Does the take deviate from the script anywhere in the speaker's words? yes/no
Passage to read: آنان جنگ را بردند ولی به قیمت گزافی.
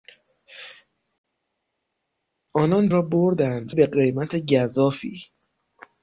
yes